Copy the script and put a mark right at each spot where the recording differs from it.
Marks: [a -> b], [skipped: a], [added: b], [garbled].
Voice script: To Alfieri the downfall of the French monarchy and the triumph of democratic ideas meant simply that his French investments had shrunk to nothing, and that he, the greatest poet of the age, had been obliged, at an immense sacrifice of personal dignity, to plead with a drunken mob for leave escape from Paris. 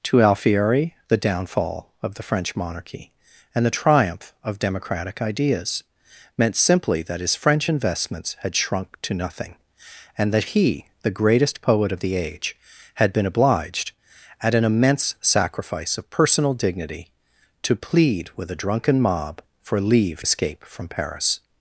To Alfieri the downfall of the French monarchy and the triumph of democratic ideas meant simply that his French investments had shrunk to nothing, and that he, the greatest poet of the age, had been obliged, at an immense sacrifice of personal dignity, to plead with a drunken mob for leave escape from Paris.